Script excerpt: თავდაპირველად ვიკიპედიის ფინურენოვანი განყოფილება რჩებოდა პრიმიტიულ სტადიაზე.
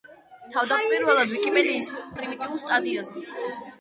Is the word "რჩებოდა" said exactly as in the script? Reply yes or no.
no